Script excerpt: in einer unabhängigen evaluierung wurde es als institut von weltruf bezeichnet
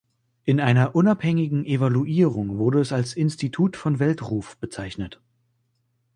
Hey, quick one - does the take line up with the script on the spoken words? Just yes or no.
yes